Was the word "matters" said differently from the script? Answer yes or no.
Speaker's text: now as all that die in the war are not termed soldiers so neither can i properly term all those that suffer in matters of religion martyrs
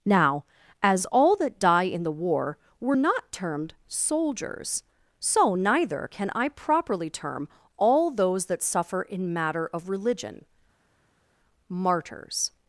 yes